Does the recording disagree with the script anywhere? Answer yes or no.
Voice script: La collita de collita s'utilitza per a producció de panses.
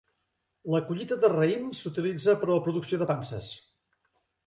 yes